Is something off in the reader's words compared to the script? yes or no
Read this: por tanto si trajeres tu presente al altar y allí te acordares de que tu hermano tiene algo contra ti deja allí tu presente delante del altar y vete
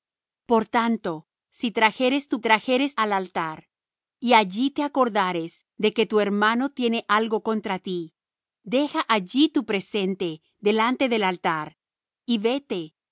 yes